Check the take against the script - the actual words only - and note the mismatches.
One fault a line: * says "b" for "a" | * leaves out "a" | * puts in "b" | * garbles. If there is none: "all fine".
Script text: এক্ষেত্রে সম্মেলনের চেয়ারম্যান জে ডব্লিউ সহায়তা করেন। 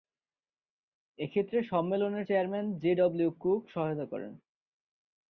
* puts in "কুক"